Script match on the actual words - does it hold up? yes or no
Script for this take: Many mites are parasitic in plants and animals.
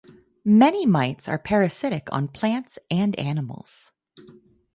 no